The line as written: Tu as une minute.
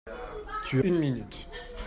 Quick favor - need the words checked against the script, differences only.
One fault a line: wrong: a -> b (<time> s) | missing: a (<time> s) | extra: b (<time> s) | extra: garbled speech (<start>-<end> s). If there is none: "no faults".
missing: as (0.8 s)